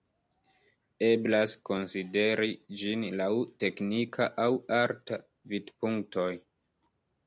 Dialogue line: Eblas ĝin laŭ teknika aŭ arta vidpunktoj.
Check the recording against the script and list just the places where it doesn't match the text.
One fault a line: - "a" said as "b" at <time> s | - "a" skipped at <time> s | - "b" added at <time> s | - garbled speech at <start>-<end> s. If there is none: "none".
- "konsideri" added at 1.7 s